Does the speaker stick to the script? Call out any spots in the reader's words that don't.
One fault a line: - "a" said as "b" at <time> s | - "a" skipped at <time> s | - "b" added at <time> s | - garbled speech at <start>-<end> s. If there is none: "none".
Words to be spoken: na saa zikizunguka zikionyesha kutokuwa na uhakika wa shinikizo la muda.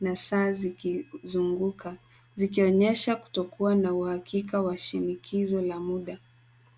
none